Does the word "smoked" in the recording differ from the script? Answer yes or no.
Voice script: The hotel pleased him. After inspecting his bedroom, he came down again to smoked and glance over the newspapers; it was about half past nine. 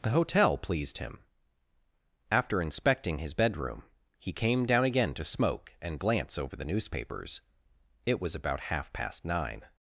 yes